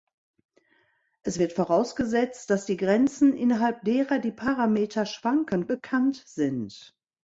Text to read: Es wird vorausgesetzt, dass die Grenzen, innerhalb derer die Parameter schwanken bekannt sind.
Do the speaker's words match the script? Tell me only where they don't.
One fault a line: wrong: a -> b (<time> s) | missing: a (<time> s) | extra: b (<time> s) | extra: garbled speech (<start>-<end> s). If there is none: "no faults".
no faults